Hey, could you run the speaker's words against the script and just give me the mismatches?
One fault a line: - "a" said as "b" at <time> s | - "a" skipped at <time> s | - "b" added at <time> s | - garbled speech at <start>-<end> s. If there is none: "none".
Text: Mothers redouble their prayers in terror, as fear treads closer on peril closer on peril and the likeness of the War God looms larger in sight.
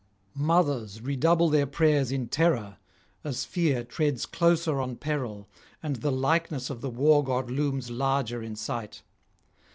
- "closer on peril" skipped at 5.5 s